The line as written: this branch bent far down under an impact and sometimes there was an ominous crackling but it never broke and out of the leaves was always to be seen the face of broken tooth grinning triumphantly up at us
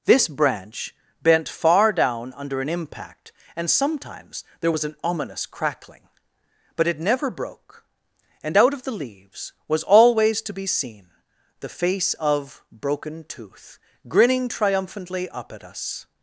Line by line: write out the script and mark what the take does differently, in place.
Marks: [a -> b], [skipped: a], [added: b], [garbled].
this branch bent far down under an impact and sometimes there was an ominous crackling but it never broke and out of the leaves was always to be seen the face of broken tooth grinning triumphantly up at us